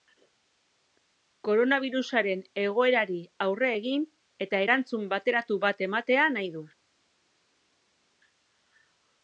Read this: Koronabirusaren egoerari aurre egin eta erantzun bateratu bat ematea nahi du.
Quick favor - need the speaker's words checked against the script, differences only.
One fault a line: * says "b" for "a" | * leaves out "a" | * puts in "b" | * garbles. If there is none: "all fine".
all fine